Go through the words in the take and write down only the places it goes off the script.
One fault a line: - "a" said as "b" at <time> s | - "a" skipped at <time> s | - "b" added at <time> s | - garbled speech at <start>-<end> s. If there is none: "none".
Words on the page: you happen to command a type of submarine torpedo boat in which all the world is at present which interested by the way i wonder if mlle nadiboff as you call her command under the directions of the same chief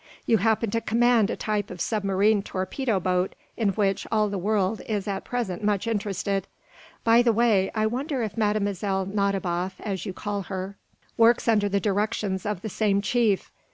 - "which" said as "much" at 5.6 s
- "command" said as "works" at 11.2 s